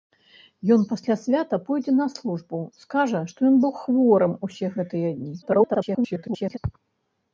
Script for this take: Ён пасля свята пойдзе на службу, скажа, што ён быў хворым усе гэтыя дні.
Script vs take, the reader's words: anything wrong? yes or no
yes